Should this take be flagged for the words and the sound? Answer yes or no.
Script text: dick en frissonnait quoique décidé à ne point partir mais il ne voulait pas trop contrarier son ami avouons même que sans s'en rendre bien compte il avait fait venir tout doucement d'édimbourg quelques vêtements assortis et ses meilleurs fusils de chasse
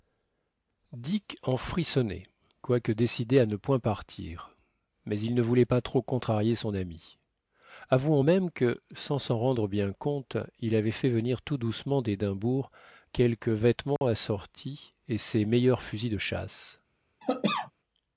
yes